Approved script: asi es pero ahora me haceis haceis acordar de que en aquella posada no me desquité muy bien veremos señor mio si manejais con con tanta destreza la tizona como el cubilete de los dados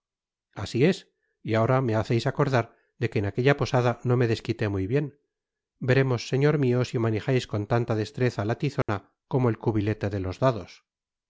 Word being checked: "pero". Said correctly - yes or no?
no